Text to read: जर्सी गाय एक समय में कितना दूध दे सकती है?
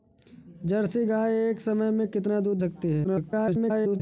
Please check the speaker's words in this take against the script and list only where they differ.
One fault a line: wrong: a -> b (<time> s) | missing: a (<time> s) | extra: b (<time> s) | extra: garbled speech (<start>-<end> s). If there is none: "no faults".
missing: दे (2.6 s)
extra: garbled speech (3.0-4.0 s)